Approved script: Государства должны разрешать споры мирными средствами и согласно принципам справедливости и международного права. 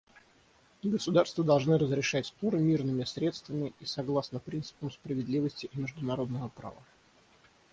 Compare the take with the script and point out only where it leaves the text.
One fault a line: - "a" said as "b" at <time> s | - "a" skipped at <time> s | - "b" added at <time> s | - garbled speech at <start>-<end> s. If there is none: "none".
none